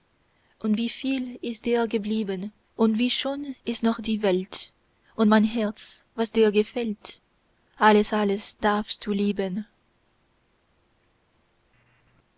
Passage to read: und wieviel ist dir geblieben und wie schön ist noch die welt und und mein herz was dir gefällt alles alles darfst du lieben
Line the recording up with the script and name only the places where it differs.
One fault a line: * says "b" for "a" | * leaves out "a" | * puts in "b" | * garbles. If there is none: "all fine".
* leaves out "und"